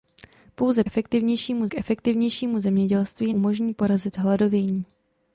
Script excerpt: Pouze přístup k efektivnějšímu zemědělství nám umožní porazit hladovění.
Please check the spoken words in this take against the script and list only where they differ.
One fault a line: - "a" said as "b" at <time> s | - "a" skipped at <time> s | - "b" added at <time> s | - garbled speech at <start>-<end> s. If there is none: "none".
- "přístup" said as "efektivnějšímu" at 0.8 s
- "nám" skipped at 3.3 s